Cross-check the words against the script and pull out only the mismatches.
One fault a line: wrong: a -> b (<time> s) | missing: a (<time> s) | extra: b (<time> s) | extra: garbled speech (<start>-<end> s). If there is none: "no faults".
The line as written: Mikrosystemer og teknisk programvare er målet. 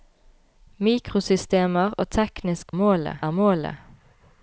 wrong: programvare -> målet (2.7 s)